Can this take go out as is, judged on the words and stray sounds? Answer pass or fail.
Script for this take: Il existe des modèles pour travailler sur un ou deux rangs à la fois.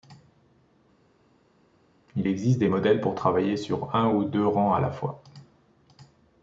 pass